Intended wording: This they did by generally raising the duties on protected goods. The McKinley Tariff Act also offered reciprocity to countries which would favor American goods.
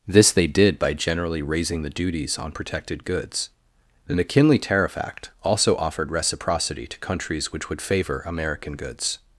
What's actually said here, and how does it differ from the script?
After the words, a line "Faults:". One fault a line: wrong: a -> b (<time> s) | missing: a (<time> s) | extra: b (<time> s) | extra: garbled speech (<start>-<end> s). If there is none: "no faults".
This they did by generally raising the duties on protected goods. The McKinley Tariff Act also offered reciprocity to countries which would favor American goods.
Faults:
no faults